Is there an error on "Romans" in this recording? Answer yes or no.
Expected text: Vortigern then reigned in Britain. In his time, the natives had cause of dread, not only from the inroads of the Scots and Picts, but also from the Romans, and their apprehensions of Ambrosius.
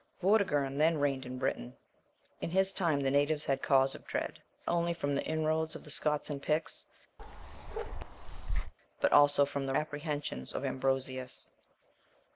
yes